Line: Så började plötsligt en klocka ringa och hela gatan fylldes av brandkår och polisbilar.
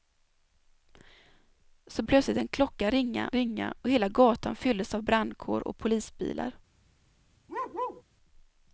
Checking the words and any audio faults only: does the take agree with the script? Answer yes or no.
no